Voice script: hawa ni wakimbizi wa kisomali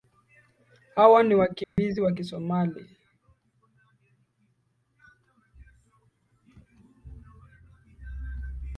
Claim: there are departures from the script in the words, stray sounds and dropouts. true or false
true